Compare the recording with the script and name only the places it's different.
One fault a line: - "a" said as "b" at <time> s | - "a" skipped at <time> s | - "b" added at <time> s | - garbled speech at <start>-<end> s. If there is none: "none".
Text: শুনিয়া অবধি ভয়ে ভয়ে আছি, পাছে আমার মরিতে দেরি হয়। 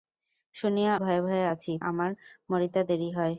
- "অবধি" skipped at 0.9 s
- "পাছে" skipped at 1.7 s